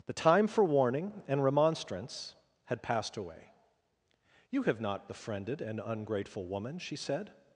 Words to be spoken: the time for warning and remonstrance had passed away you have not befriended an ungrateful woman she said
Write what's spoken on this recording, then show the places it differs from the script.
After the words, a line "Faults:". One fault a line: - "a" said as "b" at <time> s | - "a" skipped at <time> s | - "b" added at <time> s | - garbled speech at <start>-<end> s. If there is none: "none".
the time for warning and remonstrance had passed away you have not befriended an ungrateful woman she said
Faults:
none